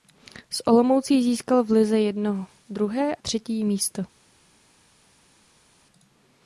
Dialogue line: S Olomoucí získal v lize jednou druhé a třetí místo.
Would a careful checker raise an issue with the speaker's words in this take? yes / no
no